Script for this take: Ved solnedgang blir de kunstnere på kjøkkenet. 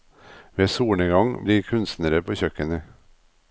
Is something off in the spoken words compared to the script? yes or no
yes